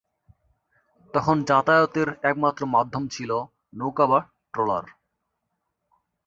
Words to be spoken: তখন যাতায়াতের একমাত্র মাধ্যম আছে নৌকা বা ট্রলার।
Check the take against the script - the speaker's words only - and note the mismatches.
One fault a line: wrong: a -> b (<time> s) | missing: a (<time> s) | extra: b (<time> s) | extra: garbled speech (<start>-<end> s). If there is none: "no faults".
wrong: আছে -> ছিল (3.1 s)